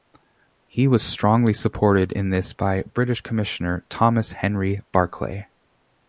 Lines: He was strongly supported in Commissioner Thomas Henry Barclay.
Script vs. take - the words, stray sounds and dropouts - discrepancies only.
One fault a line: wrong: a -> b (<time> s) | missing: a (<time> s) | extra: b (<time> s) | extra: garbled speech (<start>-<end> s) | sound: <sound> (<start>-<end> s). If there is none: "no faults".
extra: this by British (2.3 s)